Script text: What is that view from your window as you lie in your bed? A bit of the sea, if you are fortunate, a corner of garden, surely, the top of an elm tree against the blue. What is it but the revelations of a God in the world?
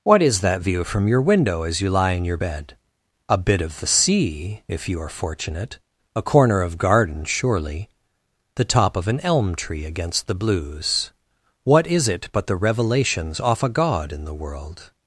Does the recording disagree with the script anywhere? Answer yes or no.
yes